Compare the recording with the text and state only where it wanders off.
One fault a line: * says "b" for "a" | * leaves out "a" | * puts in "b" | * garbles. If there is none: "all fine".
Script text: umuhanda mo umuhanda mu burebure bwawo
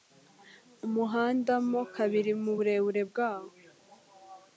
* says "kabiri" for "umuhanda"